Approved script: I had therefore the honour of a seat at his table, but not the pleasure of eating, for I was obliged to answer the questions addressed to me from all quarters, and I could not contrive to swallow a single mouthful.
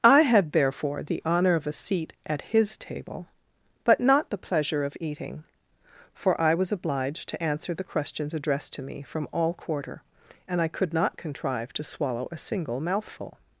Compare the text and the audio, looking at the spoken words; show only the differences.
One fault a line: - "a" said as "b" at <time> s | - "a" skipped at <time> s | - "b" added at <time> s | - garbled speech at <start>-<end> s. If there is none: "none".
- "quarters" said as "quarter" at 9.5 s